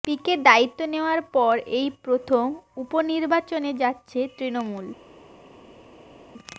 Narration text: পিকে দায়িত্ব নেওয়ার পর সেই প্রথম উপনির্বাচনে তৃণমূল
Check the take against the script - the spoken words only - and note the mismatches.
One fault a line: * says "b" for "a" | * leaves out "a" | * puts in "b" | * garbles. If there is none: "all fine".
* says "এই" for "সেই"
* puts in "যাচ্ছে"